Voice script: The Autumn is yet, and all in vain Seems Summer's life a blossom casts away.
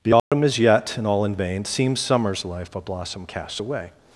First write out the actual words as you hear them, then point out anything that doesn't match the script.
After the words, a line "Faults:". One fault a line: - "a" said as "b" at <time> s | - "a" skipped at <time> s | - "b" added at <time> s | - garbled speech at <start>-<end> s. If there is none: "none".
The Autumn is yet, and all in vain Seems Summer's life a blossom casts away.
Faults:
none